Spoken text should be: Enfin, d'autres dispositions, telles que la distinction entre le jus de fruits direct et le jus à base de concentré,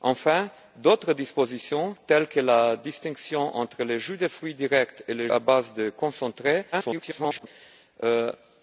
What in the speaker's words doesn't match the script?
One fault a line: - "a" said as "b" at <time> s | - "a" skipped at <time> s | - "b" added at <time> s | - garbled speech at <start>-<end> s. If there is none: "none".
- "jus" skipped at 5.3 s
- garbled speech at 6.7-7.5 s